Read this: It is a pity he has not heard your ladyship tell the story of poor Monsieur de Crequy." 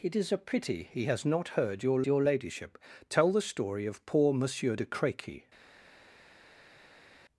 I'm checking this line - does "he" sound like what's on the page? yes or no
yes